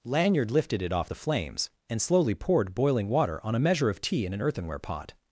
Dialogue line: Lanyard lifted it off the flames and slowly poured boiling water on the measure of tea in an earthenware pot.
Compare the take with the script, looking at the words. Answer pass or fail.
fail